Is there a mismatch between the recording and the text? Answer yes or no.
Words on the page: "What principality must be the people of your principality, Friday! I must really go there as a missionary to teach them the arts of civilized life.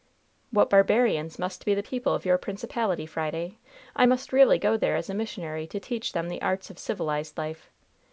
yes